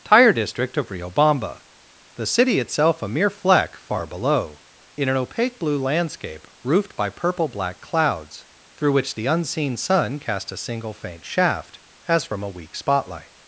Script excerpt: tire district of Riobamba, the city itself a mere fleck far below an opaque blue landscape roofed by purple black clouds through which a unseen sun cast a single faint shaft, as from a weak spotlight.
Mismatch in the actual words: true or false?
true